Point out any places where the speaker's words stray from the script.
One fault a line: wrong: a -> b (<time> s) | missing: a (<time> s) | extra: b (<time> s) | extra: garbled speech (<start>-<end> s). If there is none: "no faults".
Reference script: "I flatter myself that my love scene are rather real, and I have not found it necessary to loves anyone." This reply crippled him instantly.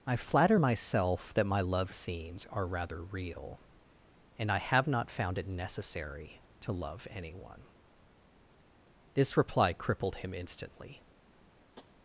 wrong: scene -> scenes (1.9 s)
wrong: loves -> love (6.7 s)